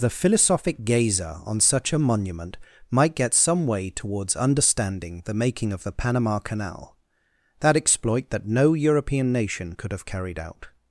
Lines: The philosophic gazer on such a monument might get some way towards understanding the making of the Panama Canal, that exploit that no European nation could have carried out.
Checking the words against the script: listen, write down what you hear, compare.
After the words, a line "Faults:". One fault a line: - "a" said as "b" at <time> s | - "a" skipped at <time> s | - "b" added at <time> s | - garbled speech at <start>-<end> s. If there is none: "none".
The philosophic gazer on such a monument might get some way towards understanding the making of the Panama Canal, that exploit that no European nation could have carried out.
Faults:
none